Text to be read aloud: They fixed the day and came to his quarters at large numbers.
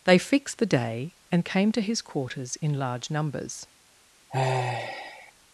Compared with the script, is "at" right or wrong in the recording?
wrong